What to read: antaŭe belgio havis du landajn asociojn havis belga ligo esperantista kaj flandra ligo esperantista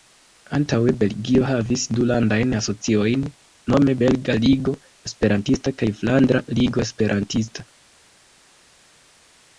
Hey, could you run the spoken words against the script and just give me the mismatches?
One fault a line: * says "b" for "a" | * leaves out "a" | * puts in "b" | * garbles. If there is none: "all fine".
* says "nome" for "havis"